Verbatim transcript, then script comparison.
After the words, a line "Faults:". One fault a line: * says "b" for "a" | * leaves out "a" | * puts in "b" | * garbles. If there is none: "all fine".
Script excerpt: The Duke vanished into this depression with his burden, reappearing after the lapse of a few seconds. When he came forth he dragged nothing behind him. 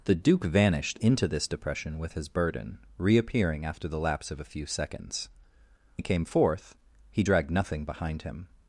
The Duke vanished into this depression with his burden, reappearing after the lapse of a few seconds. He came forth he dragged nothing behind him.
Faults:
* leaves out "When"